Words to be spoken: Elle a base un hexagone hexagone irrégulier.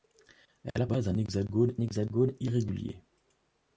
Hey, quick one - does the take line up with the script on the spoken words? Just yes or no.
yes